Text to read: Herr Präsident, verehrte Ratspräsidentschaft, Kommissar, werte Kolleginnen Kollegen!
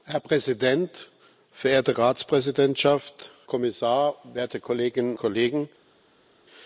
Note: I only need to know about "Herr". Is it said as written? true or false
true